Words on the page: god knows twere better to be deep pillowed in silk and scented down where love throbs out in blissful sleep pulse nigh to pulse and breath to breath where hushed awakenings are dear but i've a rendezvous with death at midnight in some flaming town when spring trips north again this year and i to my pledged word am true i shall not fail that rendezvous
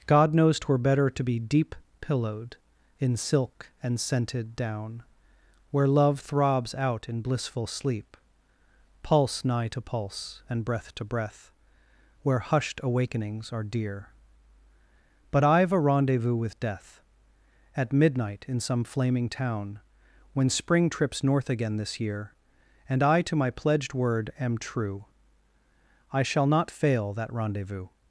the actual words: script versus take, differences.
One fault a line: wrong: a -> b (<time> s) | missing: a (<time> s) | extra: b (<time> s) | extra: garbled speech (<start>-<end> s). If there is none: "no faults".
no faults